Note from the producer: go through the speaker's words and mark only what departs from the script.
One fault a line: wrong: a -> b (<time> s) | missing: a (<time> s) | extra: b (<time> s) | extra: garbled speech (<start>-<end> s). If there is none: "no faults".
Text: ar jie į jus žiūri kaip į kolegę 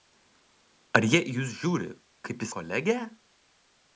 no faults